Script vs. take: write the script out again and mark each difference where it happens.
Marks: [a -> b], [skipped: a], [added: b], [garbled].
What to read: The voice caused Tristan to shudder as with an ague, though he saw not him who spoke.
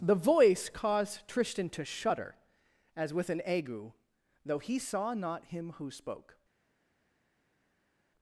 The voice caused Tristan to shudder as with an ague, though he saw not him who spoke.